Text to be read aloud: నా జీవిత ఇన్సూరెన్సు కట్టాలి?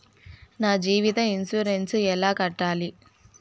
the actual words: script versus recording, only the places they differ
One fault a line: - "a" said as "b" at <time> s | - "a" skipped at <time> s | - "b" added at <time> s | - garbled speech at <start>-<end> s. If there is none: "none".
- "ఎలా" added at 2.1 s